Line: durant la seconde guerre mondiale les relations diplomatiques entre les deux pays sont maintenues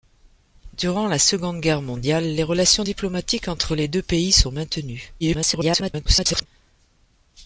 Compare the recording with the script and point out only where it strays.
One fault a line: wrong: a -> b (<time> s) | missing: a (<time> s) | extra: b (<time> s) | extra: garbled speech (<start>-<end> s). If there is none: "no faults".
extra: garbled speech (5.2-6.5 s)